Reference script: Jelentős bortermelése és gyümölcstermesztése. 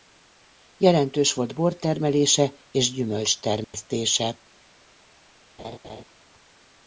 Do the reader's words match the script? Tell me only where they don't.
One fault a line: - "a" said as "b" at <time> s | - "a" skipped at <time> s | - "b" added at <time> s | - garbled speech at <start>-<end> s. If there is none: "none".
- "volt" added at 1.3 s